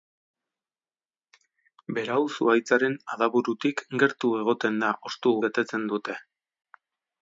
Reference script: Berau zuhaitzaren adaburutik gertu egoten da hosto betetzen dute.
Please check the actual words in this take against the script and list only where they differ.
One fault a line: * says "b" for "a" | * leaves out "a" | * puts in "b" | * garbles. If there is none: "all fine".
all fine